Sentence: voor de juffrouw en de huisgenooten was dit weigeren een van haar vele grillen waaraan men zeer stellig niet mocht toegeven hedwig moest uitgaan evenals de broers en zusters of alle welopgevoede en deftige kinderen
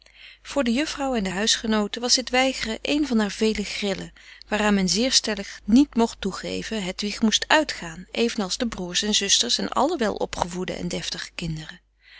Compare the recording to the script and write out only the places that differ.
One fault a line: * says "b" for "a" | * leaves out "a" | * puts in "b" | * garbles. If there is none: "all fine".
* says "en" for "of"